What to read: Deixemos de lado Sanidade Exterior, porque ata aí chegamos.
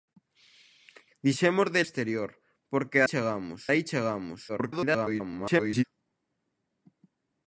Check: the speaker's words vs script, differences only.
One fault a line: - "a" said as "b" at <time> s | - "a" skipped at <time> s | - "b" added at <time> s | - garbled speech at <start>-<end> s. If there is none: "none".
- "lado Sanidade" skipped at 1.8 s
- "ata" said as "chegamos" at 3.1 s
- garbled speech at 4.5-5.8 s